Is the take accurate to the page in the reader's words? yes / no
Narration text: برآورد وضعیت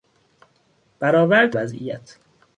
yes